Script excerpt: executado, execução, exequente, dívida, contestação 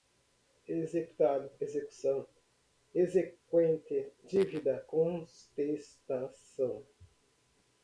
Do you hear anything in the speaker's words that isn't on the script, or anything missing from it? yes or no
no